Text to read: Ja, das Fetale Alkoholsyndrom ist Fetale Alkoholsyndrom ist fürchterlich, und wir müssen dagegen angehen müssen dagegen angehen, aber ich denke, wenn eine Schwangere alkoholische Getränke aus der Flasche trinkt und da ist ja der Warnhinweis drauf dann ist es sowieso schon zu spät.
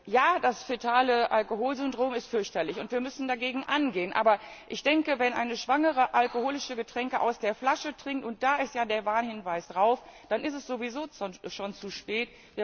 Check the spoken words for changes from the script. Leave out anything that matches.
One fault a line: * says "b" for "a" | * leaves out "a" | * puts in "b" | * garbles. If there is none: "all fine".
* leaves out "Fetale Alkoholsyndrom ist"
* leaves out "müssen dagegen angehen"